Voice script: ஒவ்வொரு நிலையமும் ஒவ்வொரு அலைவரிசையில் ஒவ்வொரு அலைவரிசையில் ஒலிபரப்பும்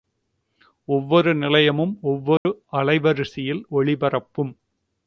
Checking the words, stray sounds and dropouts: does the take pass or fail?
fail